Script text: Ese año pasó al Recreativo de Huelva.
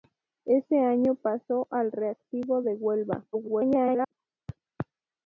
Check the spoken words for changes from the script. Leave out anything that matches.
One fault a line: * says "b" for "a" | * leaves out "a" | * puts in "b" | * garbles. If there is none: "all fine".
* garbles